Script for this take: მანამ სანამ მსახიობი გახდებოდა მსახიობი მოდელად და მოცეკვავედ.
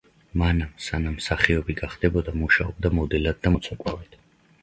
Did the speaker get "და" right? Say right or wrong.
right